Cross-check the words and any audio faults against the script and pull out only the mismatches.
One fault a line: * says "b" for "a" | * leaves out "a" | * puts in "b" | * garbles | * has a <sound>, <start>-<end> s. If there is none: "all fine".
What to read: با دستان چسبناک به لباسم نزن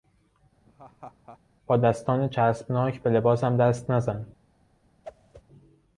* has a laugh, 0.7-1.4 s
* puts in "دست"
* has a whoosh, 5.0-5.4 s